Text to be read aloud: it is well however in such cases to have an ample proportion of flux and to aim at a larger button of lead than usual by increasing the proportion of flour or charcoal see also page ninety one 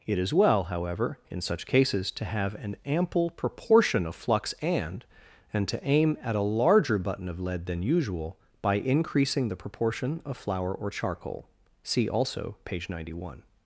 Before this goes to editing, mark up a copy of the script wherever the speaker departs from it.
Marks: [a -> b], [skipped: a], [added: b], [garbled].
it is well however in such cases to have an ample proportion of flux and [added: and] to aim at a larger button of lead than usual by increasing the proportion of flour or charcoal see also page ninety one